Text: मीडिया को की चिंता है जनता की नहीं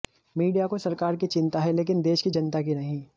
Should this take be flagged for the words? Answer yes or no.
yes